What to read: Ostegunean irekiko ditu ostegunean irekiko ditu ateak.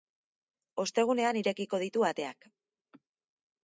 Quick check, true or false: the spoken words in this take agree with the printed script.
false